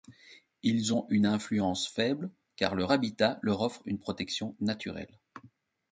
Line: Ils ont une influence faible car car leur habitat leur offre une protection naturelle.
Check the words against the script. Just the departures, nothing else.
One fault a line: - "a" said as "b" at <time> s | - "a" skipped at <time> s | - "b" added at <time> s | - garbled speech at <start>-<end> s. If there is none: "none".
- "car" skipped at 2.8 s